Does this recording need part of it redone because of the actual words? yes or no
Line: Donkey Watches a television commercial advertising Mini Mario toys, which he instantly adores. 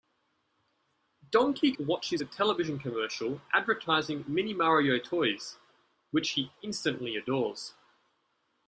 no